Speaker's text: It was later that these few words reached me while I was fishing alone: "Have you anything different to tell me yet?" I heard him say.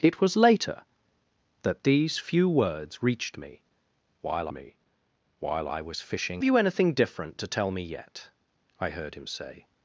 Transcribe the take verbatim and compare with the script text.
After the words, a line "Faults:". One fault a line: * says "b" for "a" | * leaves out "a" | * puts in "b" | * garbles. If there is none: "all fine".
It was later that these few words reached me while me while I was fishing you anything different to tell me yet?" I heard him say.
Faults:
* puts in "me while"
* leaves out "alone Have"